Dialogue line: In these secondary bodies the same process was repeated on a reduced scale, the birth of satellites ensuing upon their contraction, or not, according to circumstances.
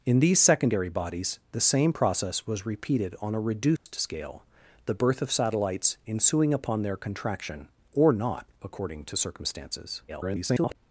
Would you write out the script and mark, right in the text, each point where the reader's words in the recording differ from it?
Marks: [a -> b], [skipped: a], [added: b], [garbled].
In these secondary bodies the same process was repeated on a reduced scale, the birth of satellites ensuing upon their contraction, or not, according to circumstances. [garbled]